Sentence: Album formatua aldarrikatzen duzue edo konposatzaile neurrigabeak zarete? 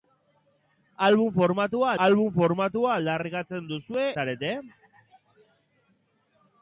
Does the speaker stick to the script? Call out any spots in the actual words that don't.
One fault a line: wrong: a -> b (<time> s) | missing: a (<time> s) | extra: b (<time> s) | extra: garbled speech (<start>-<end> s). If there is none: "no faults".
extra: album formatua (2.1 s)
missing: edo konposatzaile neurrigabeak (4.1 s)